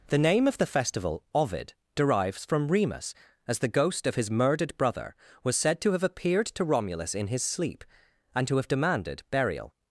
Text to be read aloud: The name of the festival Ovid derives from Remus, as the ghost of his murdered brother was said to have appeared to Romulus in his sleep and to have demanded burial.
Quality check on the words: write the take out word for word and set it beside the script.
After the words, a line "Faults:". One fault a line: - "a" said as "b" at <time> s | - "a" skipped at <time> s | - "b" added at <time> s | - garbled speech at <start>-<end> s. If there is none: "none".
The name of the festival Ovid derives from Remus, as the ghost of his murdered brother was said to have appeared to Romulus in his sleep and to have demanded burial.
Faults:
none